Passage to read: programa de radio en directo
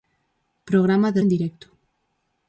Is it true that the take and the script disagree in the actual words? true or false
true